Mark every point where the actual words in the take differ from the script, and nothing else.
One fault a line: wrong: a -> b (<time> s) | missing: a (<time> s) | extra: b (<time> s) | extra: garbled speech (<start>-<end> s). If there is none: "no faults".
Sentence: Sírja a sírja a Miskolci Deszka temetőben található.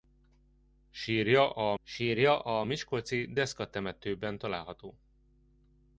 no faults